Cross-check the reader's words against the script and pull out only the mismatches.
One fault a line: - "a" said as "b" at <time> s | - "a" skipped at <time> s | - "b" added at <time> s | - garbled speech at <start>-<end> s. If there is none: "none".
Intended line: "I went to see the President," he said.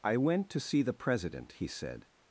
none